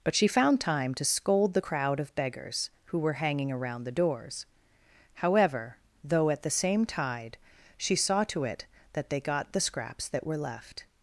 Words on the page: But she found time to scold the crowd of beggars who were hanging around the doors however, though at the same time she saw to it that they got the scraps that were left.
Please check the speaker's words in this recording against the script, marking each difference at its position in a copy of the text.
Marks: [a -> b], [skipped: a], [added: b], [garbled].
But she found time to scold the crowd of beggars who were hanging around the doors however, though at the same [time -> tide] she saw to it that they got the scraps that were left.